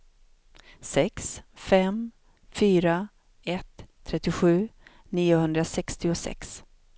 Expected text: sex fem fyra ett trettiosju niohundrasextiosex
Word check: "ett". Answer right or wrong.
right